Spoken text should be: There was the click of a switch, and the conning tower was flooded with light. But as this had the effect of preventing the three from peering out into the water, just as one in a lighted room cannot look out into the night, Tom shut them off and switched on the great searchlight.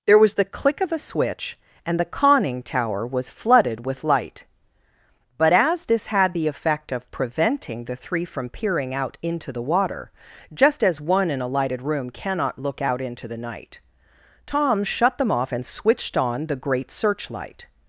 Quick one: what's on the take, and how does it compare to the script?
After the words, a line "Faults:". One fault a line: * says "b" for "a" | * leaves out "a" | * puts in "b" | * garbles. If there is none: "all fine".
There was the click of a switch, and the conning tower was flooded with light. But as this had the effect of preventing the three from peering out into the water, just as one in a lighted room cannot look out into the night, Tom shut them off and switched on the great searchlight.
Faults:
all fine